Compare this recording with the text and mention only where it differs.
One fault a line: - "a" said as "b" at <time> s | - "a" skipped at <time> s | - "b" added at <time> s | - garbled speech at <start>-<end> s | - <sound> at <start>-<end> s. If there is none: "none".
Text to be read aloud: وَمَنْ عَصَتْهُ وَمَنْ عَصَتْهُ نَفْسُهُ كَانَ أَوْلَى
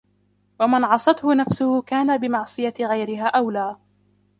- "وَمَنْ عَصَتْهُ نَفْسُهُ كَانَ" said as "نَفْسُهُ كَانَ بِمَعْصِيَةِ غَيْرِهَا" at 1.3 s